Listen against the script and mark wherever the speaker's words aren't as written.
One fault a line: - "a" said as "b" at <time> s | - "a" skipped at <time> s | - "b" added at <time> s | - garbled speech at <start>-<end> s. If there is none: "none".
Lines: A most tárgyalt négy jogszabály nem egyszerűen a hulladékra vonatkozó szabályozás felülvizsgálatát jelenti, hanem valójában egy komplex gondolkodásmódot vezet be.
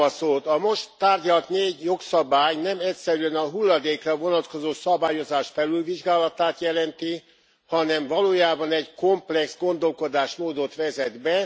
none